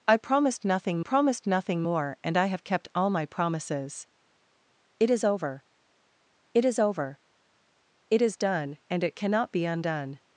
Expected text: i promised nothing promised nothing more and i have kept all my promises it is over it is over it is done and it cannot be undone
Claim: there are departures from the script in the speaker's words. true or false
false